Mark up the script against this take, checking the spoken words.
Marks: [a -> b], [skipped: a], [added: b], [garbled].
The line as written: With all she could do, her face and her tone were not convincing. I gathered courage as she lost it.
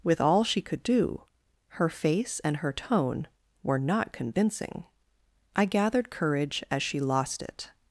With all she could do, her face and her tone were not convincing. I gathered courage as she lost it.